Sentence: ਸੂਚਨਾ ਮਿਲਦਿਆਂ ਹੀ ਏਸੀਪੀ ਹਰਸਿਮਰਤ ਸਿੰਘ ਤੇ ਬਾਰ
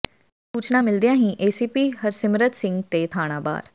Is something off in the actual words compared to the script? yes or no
yes